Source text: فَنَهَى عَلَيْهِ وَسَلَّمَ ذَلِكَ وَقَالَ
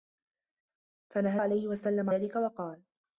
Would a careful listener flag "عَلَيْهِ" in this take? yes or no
no